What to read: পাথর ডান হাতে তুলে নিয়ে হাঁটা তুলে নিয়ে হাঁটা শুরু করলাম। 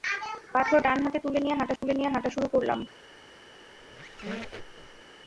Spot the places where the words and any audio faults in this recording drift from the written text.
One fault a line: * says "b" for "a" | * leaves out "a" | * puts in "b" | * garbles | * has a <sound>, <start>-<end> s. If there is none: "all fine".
* has a dropout, 1.8-1.8 s
* has a squeak, 3.7-5.0 s